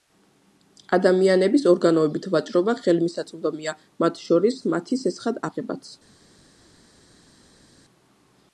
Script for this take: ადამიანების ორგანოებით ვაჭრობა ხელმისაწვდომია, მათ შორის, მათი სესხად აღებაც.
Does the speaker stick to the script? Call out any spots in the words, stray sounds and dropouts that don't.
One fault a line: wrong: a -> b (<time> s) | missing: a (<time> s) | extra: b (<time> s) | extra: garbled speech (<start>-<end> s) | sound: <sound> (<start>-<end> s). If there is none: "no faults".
no faults